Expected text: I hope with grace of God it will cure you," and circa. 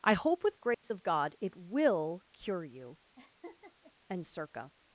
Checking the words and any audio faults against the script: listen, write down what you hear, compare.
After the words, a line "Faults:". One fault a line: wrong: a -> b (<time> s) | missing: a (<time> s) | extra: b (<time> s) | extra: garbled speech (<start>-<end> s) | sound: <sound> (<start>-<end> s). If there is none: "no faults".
I hope with grace of God it will cure you," and circa.
Faults:
sound: dropout (0.7-0.8 s)
sound: laugh (3.2-3.9 s)